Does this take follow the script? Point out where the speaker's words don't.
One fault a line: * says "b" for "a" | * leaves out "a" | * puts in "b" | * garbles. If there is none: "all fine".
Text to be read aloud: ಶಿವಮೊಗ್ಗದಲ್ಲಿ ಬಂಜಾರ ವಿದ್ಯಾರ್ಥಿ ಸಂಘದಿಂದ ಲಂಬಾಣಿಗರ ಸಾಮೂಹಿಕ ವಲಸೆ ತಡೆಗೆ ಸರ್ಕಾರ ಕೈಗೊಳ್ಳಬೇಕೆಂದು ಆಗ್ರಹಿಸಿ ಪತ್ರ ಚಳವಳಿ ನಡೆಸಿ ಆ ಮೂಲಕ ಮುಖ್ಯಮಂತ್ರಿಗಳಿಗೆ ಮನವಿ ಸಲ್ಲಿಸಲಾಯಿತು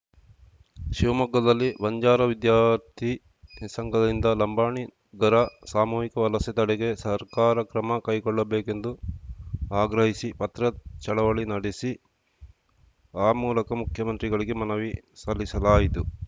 * puts in "ಕ್ರಮ"